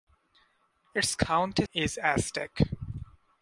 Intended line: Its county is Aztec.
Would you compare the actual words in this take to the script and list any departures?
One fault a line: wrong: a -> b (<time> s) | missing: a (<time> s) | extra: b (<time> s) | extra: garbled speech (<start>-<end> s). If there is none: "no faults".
no faults